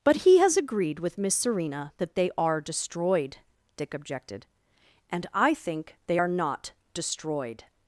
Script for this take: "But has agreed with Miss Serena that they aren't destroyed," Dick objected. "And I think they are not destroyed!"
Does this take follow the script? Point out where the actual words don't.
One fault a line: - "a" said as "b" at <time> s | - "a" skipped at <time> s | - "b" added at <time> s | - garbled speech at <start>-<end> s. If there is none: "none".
- "he" added at 0.2 s
- "aren't" said as "are" at 2.4 s